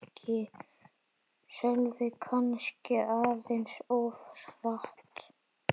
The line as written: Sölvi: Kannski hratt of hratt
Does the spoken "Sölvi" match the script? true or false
true